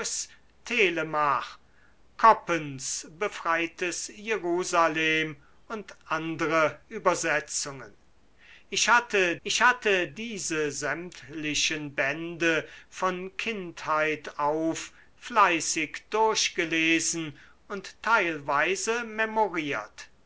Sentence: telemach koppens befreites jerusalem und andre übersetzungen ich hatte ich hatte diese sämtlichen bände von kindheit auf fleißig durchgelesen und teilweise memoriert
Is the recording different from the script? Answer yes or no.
no